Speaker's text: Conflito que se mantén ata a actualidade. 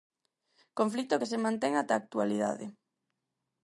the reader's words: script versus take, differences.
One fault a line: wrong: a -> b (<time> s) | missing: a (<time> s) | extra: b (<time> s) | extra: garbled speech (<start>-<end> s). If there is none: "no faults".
no faults